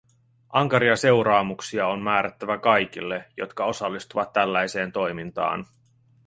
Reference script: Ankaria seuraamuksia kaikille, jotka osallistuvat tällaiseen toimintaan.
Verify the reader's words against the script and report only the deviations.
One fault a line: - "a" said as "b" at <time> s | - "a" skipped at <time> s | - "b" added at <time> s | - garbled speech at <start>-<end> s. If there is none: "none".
- "on määrättävä" added at 1.9 s